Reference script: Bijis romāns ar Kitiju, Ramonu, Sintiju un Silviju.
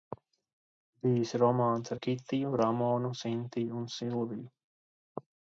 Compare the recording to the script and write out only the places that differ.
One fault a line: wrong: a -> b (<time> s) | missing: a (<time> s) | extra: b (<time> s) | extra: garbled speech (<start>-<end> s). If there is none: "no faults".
no faults